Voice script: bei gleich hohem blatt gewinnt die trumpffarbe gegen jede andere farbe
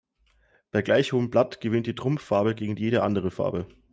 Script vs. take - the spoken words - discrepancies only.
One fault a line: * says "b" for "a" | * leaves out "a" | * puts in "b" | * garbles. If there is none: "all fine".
all fine